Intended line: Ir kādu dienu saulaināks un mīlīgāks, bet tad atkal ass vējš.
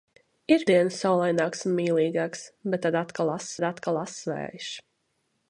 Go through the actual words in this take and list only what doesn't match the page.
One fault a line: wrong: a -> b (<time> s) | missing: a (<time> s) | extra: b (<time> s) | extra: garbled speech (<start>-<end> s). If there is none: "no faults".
missing: kādu (0.6 s)
extra: tad atkal ass (3.6 s)